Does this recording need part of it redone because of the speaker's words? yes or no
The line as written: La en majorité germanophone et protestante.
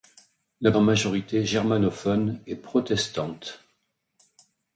no